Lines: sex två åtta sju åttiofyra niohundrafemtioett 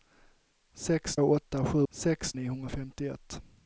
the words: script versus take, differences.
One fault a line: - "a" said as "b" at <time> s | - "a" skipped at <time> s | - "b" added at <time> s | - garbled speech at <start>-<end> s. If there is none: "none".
- "två" skipped at 1.2 s
- "åttiofyra" said as "sex" at 1.9 s